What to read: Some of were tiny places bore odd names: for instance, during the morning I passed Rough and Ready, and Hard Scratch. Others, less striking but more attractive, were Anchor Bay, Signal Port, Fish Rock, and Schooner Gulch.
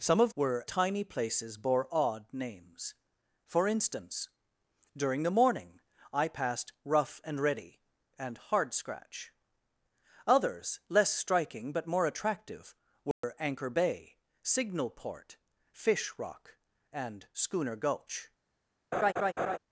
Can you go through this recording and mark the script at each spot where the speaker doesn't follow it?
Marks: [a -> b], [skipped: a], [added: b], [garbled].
Some of were tiny places bore odd names: for instance, during the morning I passed Rough and Ready, and Hard Scratch. Others, less striking but more attractive, were Anchor Bay, Signal Port, Fish Rock, and Schooner Gulch.